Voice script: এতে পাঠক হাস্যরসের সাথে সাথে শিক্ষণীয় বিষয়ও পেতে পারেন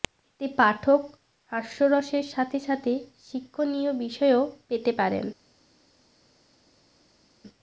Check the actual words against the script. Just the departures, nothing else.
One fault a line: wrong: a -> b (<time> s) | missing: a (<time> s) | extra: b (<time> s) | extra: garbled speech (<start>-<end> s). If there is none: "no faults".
no faults